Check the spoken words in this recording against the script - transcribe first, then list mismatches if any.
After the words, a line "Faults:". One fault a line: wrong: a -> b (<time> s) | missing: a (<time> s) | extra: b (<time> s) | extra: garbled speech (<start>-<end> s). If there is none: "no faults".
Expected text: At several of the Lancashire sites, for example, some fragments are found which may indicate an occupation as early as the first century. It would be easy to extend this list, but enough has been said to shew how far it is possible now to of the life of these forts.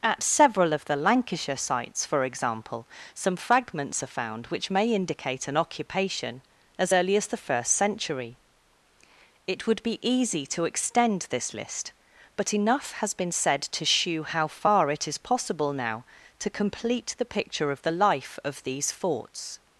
At several of the Lancashire sites, for example, some fragments are found which may indicate an occupation as early as the first century. It would be easy to extend this list, but enough has been said to shew how far it is possible now to complete the picture of the life of these forts.
Faults:
extra: complete the picture (16.5 s)